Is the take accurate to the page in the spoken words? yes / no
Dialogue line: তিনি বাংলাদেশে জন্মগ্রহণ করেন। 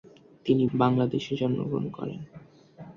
yes